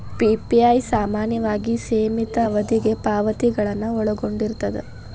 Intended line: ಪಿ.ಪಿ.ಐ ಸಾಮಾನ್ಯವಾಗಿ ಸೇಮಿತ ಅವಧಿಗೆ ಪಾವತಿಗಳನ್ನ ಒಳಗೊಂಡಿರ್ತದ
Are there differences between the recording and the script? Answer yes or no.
no